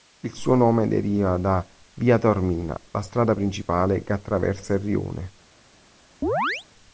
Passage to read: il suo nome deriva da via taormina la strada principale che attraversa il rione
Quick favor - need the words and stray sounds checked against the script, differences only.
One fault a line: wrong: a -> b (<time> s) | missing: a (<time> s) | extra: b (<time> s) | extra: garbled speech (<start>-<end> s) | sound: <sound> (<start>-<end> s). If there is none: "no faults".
sound: chirp (6.2-6.7 s)